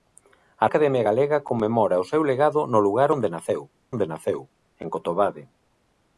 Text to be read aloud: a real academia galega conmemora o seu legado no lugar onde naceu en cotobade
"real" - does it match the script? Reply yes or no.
no